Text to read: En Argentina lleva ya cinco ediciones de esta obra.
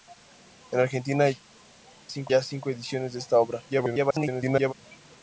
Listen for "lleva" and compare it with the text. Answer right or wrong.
wrong